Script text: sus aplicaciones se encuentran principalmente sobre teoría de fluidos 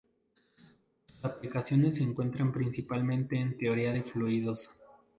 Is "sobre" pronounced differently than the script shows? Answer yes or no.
yes